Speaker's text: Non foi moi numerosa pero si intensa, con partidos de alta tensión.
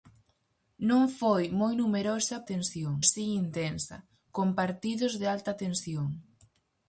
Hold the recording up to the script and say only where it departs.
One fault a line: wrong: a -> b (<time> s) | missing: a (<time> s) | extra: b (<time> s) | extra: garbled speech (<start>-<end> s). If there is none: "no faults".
wrong: pero -> tensión (2.5 s)